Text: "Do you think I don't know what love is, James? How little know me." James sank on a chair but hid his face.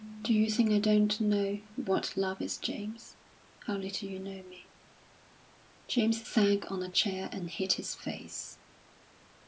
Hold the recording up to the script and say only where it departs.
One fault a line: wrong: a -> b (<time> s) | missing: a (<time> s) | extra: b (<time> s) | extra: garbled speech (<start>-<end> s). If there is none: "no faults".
extra: you (4.1 s)
wrong: but -> and (7.3 s)